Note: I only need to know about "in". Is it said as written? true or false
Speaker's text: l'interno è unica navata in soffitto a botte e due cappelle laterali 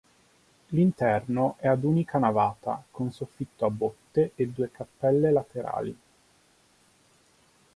false